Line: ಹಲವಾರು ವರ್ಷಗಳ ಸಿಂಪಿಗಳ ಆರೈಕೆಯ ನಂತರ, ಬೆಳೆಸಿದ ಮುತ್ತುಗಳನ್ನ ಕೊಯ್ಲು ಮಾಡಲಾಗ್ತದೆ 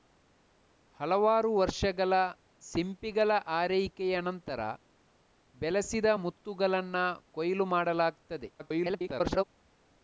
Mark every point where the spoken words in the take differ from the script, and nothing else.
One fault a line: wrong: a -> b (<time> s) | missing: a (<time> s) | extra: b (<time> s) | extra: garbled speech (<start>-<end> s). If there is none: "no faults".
extra: garbled speech (8.6-9.4 s)